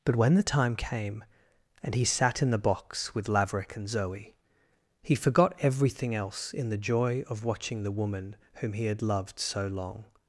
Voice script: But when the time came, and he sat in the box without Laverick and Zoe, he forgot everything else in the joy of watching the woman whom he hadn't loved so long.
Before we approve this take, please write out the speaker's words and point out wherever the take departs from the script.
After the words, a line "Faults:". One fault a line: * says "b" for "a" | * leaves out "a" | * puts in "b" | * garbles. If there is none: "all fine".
But when the time came, and he sat in the box with Laverick and Zoe, he forgot everything else in the joy of watching the woman whom he had loved so long.
Faults:
* says "with" for "without"
* says "had" for "hadn't"